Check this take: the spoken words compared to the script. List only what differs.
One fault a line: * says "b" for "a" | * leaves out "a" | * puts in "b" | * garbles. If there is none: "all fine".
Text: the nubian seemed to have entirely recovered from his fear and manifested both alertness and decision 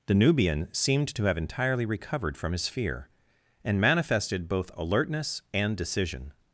all fine